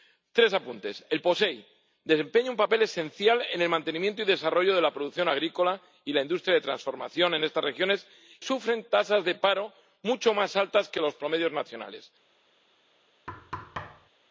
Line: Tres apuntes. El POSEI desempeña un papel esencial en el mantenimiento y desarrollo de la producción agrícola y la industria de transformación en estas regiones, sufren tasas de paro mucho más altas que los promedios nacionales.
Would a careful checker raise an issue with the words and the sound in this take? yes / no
yes